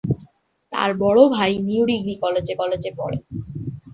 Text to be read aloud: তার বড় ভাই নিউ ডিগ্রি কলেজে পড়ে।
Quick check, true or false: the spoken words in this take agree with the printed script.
false